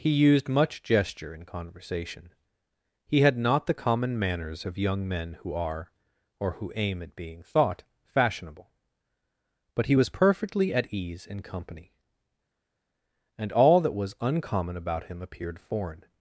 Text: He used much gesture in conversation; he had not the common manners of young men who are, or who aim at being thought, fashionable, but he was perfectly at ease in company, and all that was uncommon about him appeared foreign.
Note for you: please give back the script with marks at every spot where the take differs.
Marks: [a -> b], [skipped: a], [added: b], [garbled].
He used much gesture in conversation; he had not the common manners of young men who are, or who aim at being thought, fashionable, but he was perfectly at ease in company, and all that was uncommon about him appeared foreign.